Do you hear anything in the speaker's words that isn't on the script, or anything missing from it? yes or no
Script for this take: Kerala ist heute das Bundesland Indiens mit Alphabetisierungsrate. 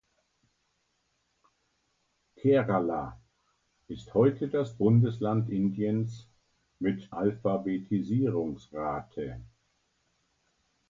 no